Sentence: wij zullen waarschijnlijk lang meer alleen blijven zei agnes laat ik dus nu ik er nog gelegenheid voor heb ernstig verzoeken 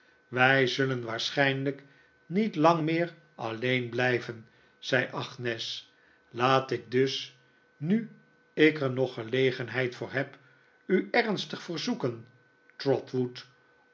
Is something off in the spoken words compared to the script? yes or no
yes